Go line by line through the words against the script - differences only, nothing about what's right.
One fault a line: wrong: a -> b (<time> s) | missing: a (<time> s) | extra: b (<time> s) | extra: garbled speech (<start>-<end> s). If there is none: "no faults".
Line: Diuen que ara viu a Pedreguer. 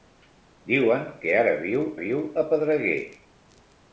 extra: viu (2.0 s)